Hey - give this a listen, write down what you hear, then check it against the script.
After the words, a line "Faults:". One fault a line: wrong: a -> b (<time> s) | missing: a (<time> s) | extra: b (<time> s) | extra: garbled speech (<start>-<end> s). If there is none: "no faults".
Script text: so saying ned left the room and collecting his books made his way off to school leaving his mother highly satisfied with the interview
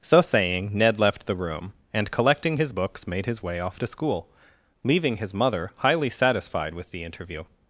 so saying ned left the room and collecting his books made his way off to school leaving his mother highly satisfied with the interview
Faults:
no faults